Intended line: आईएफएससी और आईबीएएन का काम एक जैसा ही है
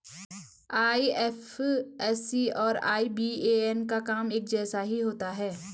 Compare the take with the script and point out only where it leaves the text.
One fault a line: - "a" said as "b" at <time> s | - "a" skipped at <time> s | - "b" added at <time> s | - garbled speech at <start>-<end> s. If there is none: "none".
- "होता" added at 5.0 s